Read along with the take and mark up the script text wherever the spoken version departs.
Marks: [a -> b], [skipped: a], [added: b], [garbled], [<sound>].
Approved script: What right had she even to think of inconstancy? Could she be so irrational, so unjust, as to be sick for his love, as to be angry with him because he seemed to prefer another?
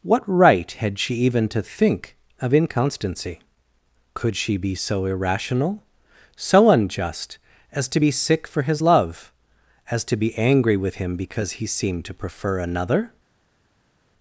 What right had she even to think of inconstancy? Could she be so irrational, so unjust, as to be sick for his love, as to be angry with him because he seemed to prefer another?